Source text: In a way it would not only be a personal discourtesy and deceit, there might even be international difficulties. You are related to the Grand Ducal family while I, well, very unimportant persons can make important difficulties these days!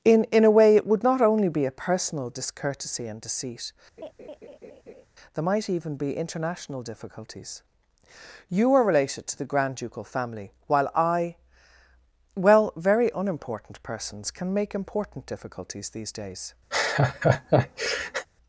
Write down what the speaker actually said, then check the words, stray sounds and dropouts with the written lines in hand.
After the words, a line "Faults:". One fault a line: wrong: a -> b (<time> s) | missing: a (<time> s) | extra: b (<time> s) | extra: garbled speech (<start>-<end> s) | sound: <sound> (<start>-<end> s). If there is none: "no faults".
In in a way it would not only be a personal discourtesy and deceit, there might even be international difficulties. You are related to the Grand Ducal family while I, well, very unimportant persons can make important difficulties these days!
Faults:
extra: in (0.2 s)
sound: laugh (4.0-5.1 s)
sound: laugh (16.7-18.3 s)